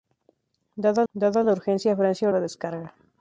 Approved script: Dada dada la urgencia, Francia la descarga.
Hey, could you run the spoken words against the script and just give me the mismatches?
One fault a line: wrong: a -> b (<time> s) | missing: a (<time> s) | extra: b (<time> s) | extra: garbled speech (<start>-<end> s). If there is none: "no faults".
no faults